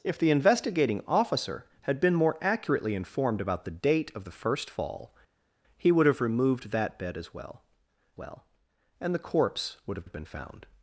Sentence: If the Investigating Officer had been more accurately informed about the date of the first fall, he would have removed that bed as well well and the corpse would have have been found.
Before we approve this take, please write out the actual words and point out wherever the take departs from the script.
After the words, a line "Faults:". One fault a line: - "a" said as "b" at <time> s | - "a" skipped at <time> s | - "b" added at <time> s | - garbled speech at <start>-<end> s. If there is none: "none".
If the Investigating Officer had been more accurately informed about the date of the first fall, he would have removed that bed as well well and the corpse would have have been found.
Faults:
none